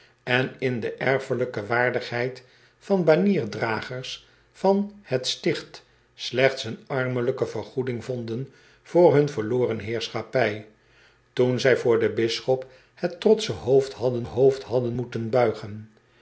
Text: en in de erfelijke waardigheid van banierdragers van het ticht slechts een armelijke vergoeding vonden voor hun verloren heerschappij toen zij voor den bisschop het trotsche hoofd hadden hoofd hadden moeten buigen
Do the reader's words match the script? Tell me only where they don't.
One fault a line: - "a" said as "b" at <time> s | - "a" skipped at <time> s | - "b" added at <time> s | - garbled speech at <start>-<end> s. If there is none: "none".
none